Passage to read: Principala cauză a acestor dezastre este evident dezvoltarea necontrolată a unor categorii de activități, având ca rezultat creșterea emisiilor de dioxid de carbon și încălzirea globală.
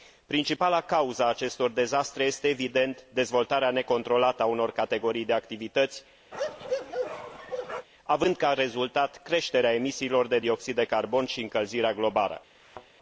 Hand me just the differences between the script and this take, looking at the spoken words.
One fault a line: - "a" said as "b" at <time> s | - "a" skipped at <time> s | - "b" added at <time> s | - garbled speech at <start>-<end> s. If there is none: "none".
none